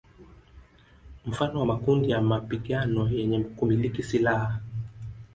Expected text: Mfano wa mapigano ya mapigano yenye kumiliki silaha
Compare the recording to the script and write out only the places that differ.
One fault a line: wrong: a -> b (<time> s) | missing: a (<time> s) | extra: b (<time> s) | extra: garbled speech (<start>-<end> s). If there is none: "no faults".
wrong: mapigano -> makundi (1.6 s)